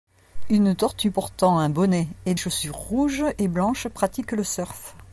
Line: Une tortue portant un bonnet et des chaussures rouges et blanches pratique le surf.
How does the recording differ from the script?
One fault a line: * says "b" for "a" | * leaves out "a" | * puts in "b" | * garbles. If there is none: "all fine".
* leaves out "des"